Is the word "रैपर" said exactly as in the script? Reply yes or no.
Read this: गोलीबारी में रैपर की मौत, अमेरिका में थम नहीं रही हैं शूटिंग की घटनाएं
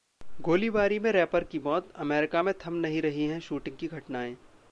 yes